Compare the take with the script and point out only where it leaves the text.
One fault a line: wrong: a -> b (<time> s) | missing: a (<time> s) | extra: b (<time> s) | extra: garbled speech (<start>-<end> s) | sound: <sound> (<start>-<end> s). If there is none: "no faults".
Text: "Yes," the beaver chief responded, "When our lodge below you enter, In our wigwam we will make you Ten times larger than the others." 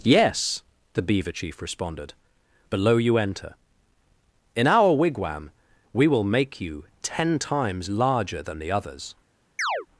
missing: When our lodge (2.1 s)
sound: chirp (9.6-9.9 s)